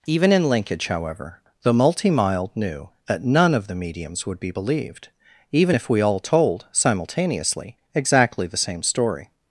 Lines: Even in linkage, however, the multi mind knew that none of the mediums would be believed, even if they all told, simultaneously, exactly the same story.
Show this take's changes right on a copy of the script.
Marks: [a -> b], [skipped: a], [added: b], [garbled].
Even in linkage, however, the multi [mind -> mild] knew that none of the mediums would be believed, even if [they -> we] all told, simultaneously, exactly the same story.